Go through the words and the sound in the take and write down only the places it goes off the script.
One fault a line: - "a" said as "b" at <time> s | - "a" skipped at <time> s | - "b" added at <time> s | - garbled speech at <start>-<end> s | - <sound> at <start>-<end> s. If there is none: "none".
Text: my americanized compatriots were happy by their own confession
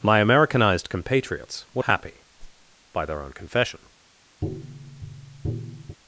- whoosh at 2.4-2.8 s
- tap at 4.4-6.0 s